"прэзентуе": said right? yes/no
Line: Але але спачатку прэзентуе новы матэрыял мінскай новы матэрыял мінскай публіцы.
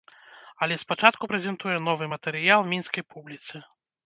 yes